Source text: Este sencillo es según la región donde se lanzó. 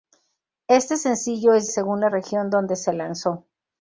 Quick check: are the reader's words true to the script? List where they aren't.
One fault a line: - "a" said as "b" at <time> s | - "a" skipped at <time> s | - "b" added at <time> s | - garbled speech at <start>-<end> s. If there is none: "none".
none